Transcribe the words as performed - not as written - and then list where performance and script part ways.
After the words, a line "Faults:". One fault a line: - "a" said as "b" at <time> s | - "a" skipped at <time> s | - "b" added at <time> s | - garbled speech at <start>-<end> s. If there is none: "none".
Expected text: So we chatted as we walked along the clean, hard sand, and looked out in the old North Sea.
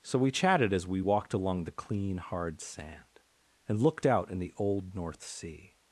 So we chatted as we walked along the clean, hard sand, and looked out in the old North Sea.
Faults:
none